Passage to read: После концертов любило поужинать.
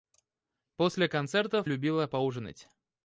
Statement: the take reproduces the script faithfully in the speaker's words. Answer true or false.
true